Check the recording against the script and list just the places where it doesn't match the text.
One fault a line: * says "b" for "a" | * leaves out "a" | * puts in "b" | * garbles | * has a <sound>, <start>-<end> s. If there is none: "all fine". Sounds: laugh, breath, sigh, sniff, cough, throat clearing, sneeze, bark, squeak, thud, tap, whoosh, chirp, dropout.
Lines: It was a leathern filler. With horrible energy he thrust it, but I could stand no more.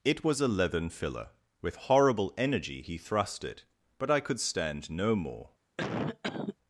* has a cough, 5.8-6.6 s